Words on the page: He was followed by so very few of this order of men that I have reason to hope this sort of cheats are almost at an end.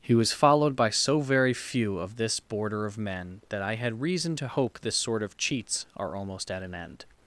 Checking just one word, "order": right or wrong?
wrong